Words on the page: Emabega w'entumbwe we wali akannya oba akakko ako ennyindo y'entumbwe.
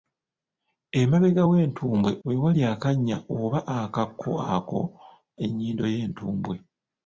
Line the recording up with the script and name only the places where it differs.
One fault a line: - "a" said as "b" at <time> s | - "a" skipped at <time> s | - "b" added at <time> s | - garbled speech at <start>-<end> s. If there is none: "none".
none